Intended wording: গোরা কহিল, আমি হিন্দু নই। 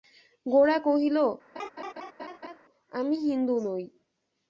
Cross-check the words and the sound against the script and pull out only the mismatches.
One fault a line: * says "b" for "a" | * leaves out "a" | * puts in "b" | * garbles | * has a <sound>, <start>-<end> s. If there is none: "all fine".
* has a laugh, 1.6-2.6 s